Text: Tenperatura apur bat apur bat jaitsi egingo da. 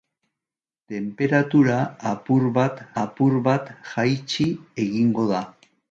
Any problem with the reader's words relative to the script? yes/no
no